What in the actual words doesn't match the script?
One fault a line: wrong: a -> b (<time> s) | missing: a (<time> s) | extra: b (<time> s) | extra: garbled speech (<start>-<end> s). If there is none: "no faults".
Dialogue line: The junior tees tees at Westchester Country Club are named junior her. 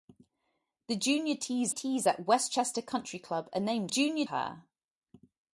no faults